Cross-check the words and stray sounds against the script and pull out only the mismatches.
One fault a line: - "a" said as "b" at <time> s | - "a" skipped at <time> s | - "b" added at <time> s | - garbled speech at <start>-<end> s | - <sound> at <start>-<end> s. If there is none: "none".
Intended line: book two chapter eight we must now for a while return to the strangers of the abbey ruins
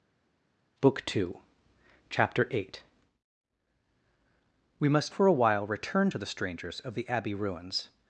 - "now" skipped at 5.1 s